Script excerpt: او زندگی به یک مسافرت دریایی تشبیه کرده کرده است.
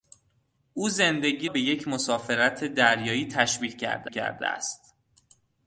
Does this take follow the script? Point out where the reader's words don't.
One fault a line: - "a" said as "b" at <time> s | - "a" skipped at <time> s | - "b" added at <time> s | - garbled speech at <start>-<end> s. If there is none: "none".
none